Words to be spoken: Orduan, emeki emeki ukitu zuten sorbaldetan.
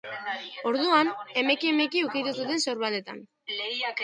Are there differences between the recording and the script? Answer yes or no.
no